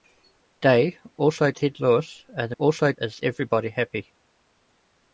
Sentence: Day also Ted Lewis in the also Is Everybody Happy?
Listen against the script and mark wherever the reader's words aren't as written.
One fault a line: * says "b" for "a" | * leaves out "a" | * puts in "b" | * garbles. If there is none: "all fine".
all fine